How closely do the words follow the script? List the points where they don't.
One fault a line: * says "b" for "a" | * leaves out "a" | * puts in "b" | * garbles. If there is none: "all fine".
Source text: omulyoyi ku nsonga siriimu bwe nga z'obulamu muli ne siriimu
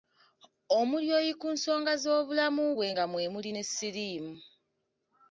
* says "z'obulamu" for "siriimu"
* says "mwe" for "z'obulamu"